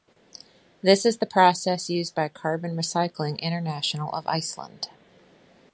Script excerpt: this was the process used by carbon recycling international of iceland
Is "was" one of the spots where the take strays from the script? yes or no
yes